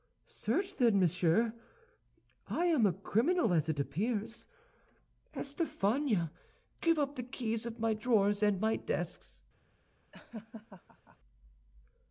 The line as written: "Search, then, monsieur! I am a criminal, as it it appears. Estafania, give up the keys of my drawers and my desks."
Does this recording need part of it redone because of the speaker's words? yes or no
yes